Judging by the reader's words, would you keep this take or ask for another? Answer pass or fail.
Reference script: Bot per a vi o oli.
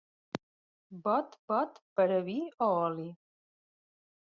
fail